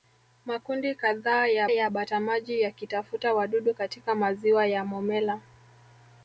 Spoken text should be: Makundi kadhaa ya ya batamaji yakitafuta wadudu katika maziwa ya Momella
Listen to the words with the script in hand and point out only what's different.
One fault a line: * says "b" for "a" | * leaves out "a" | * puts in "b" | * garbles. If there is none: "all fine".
all fine